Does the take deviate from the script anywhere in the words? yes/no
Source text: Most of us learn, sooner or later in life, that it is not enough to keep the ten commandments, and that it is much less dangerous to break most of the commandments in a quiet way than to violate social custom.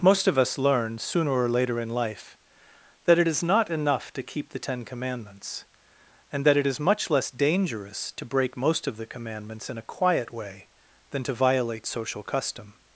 no